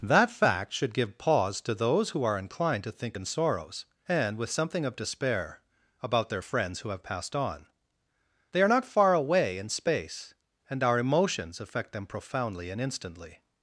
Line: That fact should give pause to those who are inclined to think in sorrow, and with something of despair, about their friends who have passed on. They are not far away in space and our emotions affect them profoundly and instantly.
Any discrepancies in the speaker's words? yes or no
yes